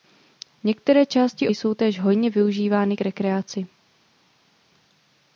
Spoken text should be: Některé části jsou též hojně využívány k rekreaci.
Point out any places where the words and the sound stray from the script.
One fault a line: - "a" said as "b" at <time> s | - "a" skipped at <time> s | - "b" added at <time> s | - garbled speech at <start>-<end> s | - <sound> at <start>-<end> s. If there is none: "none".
none